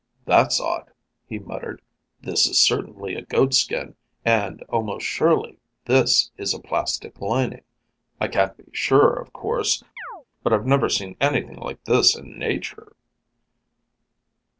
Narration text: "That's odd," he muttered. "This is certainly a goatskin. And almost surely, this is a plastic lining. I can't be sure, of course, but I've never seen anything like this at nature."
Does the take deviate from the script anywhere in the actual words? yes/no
yes